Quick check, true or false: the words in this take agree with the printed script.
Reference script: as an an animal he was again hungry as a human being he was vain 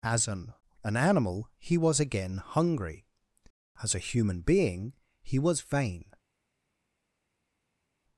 true